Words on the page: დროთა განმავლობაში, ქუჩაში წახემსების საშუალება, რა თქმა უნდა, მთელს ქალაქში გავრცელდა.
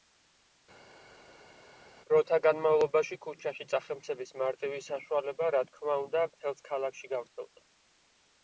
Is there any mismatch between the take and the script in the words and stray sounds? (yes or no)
yes